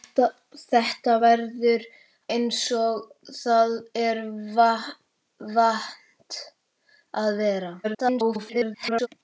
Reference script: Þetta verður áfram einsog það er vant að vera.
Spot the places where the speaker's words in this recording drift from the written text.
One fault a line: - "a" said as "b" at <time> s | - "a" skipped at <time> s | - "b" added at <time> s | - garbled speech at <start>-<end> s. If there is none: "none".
- "áfram" skipped at 1.9 s
- garbled speech at 7.8-9.1 s